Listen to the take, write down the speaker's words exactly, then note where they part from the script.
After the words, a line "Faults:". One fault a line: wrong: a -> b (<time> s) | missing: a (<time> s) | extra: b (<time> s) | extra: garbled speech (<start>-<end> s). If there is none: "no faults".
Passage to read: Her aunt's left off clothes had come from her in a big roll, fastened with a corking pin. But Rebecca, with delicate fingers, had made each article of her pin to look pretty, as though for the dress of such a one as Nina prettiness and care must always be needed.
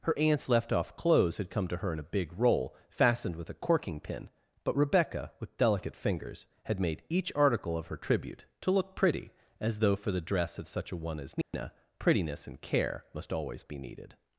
Her aunt's left off clothes had come to her in a big roll, fastened with a corking pin. But Rebecca, with delicate fingers, had made each article of her tribute to look pretty, as though for the dress of such a one as Nina prettiness and care must always be needed.
Faults:
wrong: from -> to (1.7 s)
wrong: pin -> tribute (8.0 s)